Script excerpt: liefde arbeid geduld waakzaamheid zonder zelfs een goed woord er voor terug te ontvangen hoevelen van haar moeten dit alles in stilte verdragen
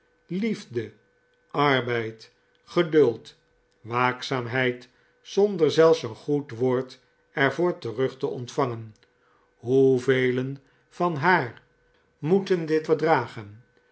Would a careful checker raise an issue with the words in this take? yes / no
yes